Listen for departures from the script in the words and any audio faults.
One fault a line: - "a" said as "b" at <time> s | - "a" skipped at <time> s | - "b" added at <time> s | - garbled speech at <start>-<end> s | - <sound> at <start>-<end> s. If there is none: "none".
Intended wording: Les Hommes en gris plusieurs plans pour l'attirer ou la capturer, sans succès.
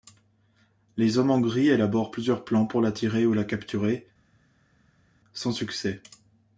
- "élaborent" added at 1.7 s